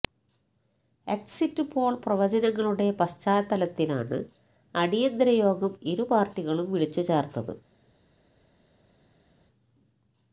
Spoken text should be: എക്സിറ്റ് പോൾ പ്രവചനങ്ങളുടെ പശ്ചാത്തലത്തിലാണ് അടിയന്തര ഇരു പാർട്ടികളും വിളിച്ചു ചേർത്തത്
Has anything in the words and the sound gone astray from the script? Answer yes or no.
yes